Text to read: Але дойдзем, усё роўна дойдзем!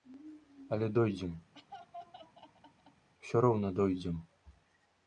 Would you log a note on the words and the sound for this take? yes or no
yes